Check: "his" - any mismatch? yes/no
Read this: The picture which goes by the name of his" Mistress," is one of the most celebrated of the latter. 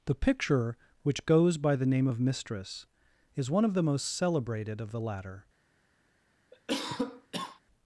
yes